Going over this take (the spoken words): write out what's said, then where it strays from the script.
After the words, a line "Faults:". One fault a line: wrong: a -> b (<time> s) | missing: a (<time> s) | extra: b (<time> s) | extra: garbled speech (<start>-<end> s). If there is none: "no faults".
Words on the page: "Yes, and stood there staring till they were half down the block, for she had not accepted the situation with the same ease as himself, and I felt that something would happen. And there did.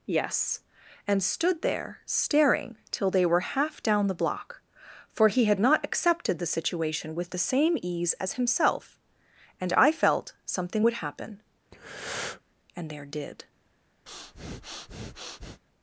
"Yes, and stood there staring till they were half down the block, for he had not accepted the situation with the same ease as himself, and I felt something would happen. And there did.
Faults:
wrong: she -> he (5.3 s)
missing: that (10.3 s)